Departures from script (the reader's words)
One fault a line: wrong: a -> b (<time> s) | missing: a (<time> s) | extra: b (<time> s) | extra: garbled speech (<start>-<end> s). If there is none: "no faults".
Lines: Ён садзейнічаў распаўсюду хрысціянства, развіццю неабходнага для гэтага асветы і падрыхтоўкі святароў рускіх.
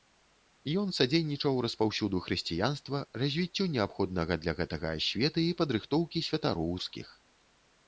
no faults